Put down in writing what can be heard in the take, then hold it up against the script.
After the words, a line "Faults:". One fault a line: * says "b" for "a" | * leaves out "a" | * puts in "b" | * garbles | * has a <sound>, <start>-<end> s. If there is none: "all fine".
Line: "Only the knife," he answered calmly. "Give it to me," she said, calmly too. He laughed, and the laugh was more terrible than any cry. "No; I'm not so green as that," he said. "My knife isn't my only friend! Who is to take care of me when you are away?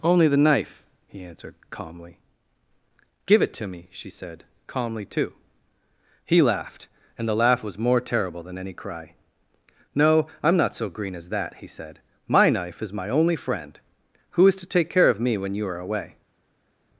"Only the knife," he answered calmly. "Give it to me," she said, calmly too. He laughed, and the laugh was more terrible than any cry. "No; I'm not so green as that," he said. "My knife is my only friend! Who is to take care of me when you are away?
Faults:
* says "is" for "isn't"